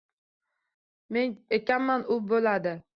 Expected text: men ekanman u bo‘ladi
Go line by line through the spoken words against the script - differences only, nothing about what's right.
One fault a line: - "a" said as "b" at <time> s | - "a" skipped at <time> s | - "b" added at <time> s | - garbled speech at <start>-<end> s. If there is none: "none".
none